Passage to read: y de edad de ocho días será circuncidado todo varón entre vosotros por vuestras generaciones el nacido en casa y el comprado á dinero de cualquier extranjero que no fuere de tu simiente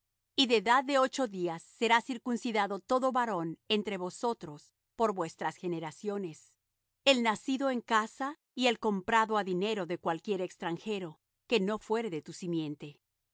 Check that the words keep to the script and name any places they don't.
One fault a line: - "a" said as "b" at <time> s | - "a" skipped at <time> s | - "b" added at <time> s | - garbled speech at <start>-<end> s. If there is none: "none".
none